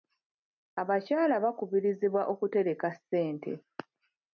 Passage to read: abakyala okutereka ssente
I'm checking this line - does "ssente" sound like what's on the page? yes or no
yes